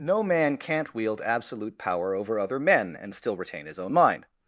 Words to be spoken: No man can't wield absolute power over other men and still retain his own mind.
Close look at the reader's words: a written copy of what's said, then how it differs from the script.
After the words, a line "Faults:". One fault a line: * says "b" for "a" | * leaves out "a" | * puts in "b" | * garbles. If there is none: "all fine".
No man can't wield absolute power over other men and still retain his own mind.
Faults:
all fine